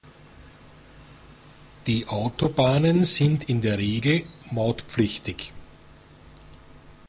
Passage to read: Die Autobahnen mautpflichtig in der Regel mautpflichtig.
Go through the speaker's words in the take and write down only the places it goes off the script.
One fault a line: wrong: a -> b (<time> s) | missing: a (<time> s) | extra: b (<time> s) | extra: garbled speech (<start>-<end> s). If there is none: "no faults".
wrong: mautpflichtig -> sind (3.0 s)